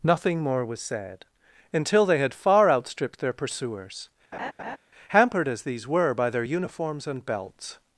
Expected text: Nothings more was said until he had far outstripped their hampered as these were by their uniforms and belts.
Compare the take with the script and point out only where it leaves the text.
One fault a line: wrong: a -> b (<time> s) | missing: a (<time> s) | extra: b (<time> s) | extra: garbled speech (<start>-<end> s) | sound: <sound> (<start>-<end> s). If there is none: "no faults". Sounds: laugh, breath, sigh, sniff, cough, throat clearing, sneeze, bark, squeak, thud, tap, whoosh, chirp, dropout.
wrong: Nothings -> Nothing (0.0 s)
wrong: he -> they (2.0 s)
extra: pursuers (3.3 s)
sound: laugh (4.3-4.8 s)